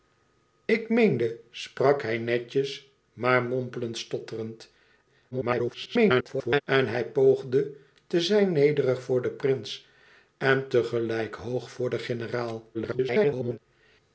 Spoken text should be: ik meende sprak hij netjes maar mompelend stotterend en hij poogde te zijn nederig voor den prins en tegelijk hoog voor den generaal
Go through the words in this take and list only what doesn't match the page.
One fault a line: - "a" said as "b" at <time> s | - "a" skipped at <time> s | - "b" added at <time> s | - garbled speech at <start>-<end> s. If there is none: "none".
- garbled speech at 5.3-6.6 s
- garbled speech at 12.7-13.6 s